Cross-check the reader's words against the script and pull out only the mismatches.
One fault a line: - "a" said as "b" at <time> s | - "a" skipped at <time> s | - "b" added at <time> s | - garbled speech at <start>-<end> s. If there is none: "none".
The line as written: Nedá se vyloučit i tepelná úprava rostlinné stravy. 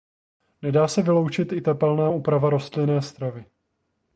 none